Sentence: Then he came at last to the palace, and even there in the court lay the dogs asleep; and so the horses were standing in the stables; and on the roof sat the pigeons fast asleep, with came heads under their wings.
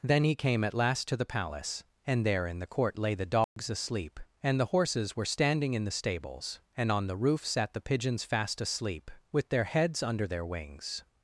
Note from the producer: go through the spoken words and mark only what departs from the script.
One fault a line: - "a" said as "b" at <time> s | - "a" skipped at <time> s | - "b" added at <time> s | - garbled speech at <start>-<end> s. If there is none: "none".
- "even" skipped at 2.2 s
- "so" skipped at 4.6 s
- "came" said as "their" at 9.5 s